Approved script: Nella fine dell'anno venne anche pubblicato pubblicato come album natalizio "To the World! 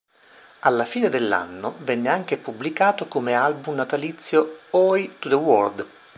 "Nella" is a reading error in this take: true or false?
true